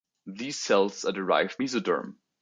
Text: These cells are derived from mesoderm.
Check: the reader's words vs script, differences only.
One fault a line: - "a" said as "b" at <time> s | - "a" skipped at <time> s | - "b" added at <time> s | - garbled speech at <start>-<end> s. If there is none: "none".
- "from" skipped at 1.6 s